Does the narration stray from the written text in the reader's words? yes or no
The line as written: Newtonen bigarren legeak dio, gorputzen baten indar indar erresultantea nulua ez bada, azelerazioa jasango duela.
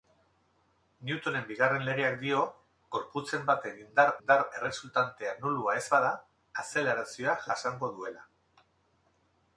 no